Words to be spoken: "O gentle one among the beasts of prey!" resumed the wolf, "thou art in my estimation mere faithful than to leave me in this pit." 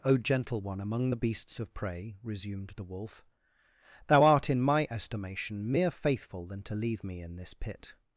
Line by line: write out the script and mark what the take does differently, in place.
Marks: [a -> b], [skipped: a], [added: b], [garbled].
"O gentle one among the beasts of prey!" resumed the wolf, "thou art in my estimation mere faithful than to leave me in this pit."